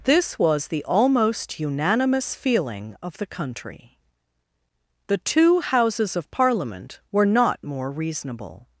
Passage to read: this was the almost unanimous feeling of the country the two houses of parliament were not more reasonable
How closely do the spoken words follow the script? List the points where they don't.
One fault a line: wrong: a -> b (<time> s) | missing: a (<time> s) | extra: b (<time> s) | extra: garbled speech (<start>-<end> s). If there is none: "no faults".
no faults